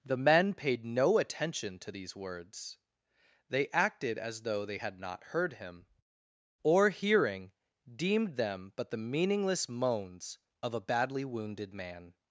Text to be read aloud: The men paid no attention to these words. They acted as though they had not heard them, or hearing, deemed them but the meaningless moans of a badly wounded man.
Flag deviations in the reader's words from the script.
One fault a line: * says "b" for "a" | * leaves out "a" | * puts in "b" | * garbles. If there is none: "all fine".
* says "him" for "them"